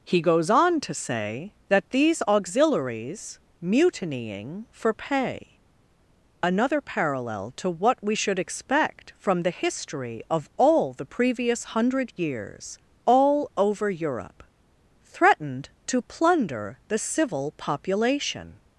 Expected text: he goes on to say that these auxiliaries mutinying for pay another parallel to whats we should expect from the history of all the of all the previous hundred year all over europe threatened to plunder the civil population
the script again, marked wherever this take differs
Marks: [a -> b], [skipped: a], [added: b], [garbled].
he goes on to say that these auxiliaries mutinying for pay another parallel to [whats -> what] we should expect from the history of all the [skipped: of all the] previous hundred [year -> years] all over europe threatened to plunder the civil population